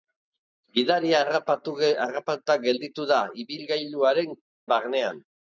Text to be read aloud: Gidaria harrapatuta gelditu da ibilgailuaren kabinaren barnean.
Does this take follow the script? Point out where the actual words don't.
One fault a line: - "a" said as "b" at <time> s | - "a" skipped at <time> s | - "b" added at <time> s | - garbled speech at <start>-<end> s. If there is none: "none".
- "kabinaren" skipped at 4.3 s